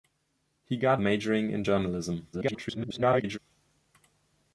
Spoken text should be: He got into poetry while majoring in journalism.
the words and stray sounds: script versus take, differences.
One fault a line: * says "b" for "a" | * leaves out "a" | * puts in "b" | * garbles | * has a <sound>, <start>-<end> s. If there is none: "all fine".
* leaves out "into poetry while"
* garbles